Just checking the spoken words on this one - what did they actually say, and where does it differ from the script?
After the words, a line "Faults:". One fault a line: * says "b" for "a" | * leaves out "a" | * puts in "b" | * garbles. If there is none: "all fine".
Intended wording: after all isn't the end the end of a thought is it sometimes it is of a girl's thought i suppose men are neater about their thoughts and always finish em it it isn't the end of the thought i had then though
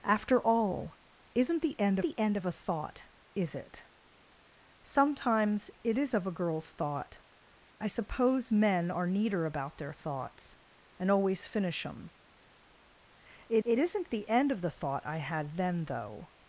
after all isn't the end the end of a thought is it sometimes it is of a girl's thought i suppose men are neater about their thoughts and always finish em it it isn't the end of the thought i had then though
Faults:
all fine